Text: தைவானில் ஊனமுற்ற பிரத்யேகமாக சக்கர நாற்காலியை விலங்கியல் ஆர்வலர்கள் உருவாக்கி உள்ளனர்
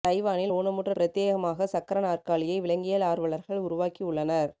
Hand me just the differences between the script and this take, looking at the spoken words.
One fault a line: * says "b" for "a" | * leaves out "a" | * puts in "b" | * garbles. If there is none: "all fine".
all fine